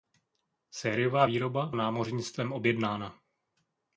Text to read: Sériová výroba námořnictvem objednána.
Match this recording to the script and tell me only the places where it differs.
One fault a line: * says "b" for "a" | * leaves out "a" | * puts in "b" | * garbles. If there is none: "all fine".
all fine